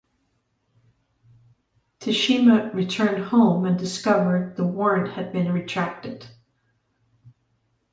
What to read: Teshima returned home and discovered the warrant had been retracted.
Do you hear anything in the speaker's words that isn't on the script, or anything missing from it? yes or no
no